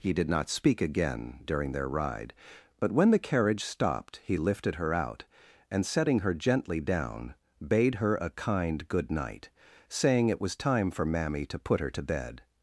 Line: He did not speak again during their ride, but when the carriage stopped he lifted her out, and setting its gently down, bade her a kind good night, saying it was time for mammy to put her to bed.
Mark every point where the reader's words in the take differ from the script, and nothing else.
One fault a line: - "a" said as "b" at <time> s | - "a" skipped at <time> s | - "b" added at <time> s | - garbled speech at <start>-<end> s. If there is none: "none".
- "its" said as "her" at 6.2 s